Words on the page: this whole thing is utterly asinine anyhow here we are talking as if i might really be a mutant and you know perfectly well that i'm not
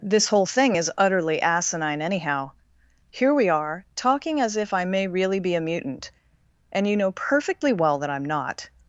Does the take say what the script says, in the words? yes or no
no